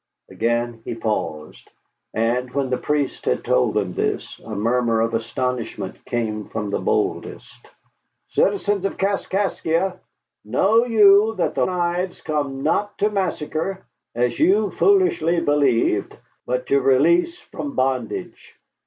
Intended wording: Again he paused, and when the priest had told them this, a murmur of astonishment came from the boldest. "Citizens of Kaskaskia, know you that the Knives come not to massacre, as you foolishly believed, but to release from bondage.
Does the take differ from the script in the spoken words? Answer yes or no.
no